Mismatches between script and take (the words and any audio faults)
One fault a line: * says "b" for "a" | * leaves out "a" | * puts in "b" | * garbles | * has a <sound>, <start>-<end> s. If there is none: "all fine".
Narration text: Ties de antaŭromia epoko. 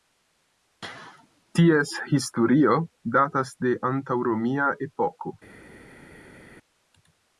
* puts in "historio datas"